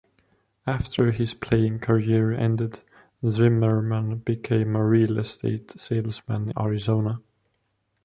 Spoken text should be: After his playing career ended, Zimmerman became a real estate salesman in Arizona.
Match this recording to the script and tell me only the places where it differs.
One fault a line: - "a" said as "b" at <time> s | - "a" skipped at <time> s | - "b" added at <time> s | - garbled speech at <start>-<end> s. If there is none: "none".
- "in" skipped at 6.5 s